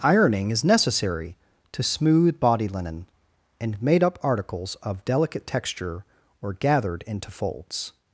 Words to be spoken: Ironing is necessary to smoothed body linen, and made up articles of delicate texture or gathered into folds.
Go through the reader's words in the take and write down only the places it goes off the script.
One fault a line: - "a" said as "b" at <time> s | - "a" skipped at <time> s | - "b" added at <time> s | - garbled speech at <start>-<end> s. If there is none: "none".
- "smoothed" said as "smooth" at 1.8 s